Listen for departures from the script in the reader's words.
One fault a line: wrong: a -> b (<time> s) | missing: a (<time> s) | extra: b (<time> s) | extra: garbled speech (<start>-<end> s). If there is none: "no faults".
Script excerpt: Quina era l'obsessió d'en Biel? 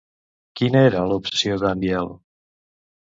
no faults